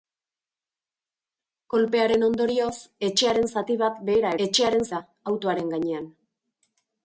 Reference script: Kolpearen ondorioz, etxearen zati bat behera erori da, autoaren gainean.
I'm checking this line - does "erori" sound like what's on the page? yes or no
no